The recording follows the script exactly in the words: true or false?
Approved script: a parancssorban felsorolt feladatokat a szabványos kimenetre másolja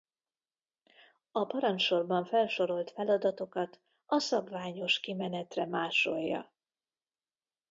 true